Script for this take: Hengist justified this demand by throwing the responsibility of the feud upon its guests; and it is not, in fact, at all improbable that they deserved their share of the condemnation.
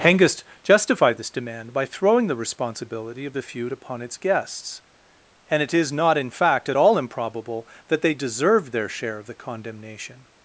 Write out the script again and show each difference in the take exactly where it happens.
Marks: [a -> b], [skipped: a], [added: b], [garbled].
Hengist justified this demand by throwing the responsibility of the feud upon its guests; and it is not, in fact, at all improbable that they deserved their share of the condemnation.